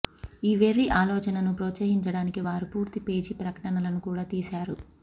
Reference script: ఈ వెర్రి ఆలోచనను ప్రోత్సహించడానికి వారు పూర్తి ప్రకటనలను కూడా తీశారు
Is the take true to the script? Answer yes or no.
no